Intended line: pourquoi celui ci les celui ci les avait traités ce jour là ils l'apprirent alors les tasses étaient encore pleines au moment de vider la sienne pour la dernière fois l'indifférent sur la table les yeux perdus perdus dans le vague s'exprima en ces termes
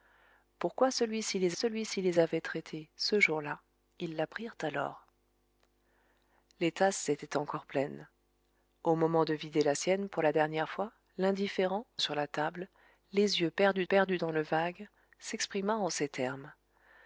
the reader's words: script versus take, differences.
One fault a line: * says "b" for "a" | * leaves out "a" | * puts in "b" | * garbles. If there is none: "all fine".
all fine